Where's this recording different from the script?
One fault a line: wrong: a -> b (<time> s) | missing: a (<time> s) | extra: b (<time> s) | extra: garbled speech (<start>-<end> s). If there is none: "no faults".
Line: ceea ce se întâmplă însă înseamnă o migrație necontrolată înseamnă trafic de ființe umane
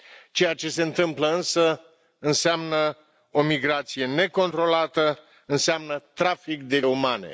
missing: ființe (6.8 s)